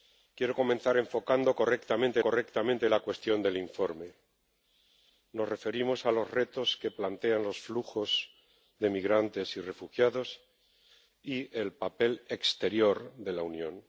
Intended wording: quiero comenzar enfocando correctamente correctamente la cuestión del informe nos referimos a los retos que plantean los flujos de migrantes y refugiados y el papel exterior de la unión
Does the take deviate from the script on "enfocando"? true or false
false